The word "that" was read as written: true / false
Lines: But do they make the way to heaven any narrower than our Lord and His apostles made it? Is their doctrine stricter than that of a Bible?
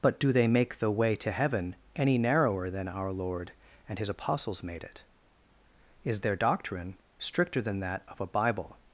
true